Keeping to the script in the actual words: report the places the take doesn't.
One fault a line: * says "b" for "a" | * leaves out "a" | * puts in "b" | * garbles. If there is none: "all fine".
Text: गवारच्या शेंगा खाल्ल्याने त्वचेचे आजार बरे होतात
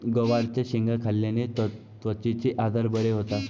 all fine